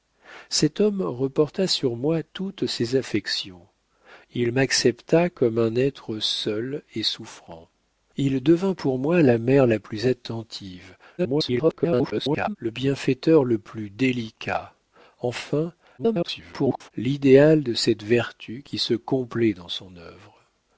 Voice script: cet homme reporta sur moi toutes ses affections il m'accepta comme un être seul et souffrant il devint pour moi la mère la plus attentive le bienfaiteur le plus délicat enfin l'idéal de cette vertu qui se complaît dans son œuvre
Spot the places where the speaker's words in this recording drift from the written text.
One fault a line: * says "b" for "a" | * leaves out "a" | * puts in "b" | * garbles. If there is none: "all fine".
* garbles
* garbles